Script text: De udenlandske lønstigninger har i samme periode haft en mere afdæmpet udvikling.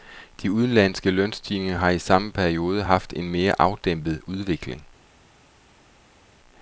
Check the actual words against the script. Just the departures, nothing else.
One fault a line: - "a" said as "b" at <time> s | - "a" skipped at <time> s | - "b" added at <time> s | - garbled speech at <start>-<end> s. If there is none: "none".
none